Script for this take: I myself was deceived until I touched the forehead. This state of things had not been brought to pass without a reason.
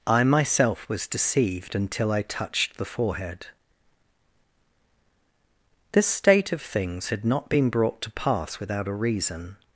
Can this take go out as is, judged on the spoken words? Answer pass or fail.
pass